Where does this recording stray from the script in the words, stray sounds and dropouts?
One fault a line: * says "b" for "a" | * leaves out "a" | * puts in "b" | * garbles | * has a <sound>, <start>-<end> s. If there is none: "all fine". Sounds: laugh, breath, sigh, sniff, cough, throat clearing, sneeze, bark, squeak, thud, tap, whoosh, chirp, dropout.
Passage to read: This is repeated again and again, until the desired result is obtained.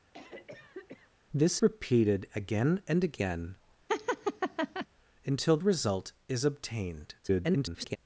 * has a cough, 0.1-1.1 s
* leaves out "is"
* has a laugh, 3.9-4.9 s
* leaves out "the desired"
* garbles